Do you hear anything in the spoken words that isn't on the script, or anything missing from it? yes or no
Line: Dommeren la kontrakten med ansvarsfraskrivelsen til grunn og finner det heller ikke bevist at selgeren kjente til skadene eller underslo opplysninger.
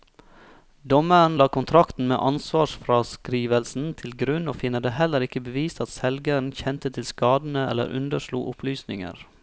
no